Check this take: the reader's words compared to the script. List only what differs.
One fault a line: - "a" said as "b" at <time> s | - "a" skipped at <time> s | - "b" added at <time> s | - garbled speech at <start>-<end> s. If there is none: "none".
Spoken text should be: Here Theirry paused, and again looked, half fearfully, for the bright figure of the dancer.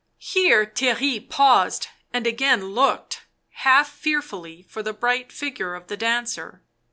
none